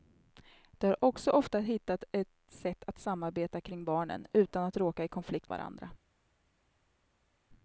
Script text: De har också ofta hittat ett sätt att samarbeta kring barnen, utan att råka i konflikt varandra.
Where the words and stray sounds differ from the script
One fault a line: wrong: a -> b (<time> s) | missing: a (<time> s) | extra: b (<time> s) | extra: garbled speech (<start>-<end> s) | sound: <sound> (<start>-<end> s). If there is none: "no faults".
no faults